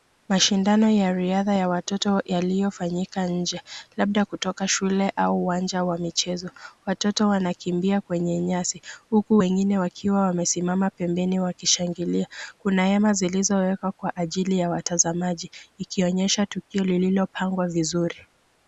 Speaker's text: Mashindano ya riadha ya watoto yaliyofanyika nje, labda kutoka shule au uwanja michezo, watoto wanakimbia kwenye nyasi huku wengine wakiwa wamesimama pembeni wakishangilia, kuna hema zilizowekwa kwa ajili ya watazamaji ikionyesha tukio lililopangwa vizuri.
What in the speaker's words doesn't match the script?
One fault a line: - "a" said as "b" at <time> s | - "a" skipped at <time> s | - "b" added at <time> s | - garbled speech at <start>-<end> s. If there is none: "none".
- "wa" added at 5.8 s